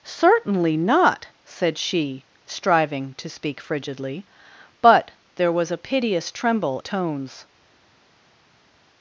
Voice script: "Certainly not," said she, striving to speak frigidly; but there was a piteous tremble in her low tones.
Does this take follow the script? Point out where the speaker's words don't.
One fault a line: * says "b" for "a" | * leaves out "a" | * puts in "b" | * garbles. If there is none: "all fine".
* leaves out "in her low"